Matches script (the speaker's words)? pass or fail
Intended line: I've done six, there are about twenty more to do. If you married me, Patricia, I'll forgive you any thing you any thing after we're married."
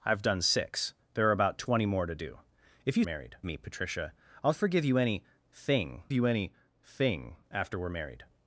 pass